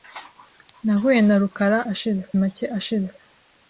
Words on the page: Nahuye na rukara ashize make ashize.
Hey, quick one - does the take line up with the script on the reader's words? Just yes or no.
yes